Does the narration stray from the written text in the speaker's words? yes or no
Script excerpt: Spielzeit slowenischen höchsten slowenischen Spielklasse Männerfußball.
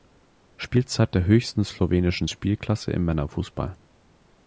yes